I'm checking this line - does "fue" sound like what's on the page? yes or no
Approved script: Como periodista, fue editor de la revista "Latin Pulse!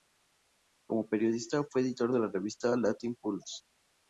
yes